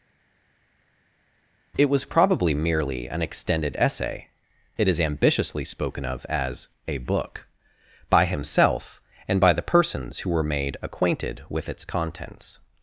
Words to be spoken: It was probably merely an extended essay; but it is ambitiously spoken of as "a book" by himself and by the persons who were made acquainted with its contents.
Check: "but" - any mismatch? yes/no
yes